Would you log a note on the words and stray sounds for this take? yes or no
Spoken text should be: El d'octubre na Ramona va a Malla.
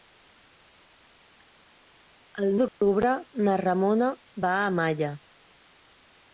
yes